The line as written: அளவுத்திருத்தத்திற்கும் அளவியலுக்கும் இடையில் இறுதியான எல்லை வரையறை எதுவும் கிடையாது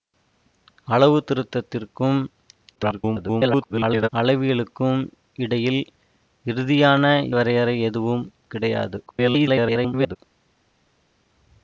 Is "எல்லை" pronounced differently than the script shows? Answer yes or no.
yes